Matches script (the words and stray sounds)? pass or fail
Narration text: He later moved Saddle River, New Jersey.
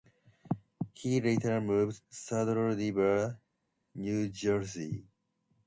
pass